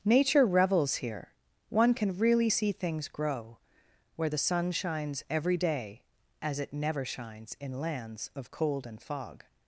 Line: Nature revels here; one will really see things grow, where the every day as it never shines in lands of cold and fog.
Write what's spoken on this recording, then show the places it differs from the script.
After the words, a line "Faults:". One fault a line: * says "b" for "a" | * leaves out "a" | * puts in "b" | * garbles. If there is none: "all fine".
Nature revels here; one can really see things grow, where the sun shines every day as it never shines in lands of cold and fog.
Faults:
* says "can" for "will"
* puts in "sun shines"